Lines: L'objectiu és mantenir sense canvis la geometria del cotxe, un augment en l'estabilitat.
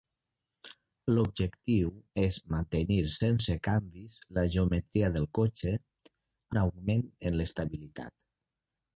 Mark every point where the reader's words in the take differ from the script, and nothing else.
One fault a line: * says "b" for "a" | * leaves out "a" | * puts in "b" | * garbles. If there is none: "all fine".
all fine